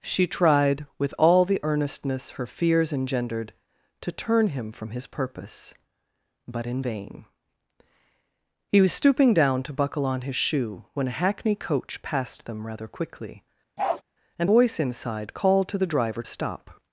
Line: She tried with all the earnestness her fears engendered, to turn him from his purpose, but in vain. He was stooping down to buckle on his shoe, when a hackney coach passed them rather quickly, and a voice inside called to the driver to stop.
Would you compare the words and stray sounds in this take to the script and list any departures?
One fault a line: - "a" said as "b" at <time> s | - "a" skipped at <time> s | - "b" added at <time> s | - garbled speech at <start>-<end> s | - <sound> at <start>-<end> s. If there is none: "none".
- bark at 13.8-14.0 s
- "a" skipped at 14.5 s
- "to" skipped at 16.2 s